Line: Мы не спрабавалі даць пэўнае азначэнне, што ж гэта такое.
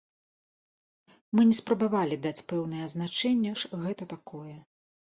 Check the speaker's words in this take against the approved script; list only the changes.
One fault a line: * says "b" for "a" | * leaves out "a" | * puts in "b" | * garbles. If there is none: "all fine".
* leaves out "што"